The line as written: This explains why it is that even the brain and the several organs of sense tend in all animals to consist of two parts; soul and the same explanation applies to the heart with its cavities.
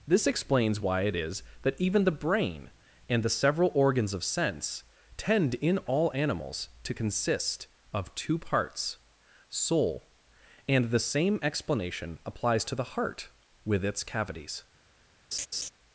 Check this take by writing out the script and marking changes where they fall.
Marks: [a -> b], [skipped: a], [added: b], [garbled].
This explains why it is that even the brain and the several organs of sense tend in all animals to consist of two parts; soul and the same explanation applies to the heart with its cavities.